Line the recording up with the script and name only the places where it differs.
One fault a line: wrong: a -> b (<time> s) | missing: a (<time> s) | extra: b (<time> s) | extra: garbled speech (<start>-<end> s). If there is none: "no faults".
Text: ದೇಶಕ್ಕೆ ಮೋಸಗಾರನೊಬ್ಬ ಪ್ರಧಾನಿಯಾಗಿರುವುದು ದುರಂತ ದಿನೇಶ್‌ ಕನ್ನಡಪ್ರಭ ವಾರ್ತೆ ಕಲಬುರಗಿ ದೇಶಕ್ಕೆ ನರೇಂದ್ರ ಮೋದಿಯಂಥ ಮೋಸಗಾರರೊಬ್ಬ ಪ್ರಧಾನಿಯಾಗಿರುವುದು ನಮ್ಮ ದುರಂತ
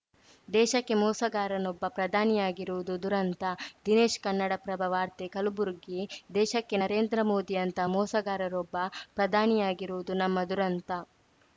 no faults